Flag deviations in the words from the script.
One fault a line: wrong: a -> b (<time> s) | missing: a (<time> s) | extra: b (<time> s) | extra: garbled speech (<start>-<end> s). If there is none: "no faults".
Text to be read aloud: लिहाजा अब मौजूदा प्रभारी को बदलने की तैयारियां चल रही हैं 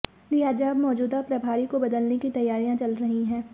no faults